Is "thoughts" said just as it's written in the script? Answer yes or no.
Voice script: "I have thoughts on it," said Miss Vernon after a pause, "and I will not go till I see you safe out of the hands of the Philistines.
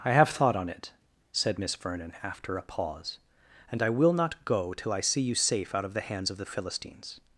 no